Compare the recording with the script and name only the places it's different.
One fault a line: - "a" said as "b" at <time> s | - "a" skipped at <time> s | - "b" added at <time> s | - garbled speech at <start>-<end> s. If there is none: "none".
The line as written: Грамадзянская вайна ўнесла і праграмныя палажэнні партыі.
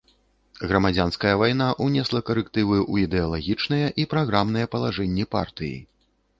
- "карэктывы ў ідэалагічныя" added at 2.3 s